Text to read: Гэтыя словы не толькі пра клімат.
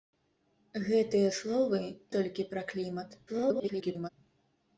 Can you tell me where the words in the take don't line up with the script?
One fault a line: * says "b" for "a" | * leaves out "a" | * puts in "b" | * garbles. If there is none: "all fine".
* leaves out "не"
* garbles